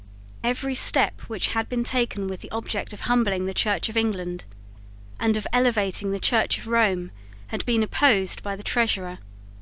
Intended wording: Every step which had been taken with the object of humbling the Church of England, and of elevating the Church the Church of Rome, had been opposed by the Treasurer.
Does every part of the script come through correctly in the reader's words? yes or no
no